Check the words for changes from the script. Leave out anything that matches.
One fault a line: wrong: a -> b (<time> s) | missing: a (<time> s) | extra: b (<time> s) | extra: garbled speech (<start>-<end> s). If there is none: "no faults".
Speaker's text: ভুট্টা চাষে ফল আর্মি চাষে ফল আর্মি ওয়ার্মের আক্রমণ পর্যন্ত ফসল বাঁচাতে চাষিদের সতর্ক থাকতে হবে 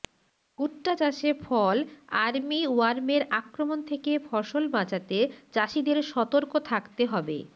missing: চাষে ফল আর্মি (2.6 s)
wrong: পর্যন্ত -> থেকে (3.9 s)